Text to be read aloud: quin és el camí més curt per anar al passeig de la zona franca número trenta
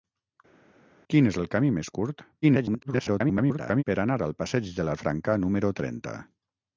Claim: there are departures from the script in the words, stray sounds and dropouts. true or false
true